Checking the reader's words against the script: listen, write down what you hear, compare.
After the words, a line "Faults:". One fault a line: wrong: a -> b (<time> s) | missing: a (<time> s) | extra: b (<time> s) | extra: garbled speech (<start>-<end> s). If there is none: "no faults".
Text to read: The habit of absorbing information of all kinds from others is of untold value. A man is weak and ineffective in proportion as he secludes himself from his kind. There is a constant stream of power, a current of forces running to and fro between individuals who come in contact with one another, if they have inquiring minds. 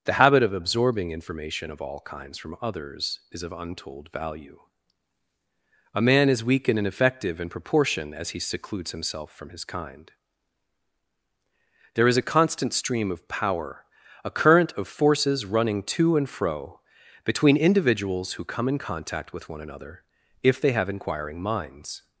The habit of absorbing information of all kinds from others is of untold value. A man is weak and ineffective in proportion as he secludes himself from his kind. There is a constant stream of power, a current of forces running to and fro between individuals who come in contact with one another, if they have inquiring minds.
Faults:
no faults